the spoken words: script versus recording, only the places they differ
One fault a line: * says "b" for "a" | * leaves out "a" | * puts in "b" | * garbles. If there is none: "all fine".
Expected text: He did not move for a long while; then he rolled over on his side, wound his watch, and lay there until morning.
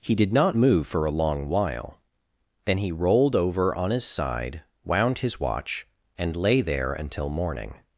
all fine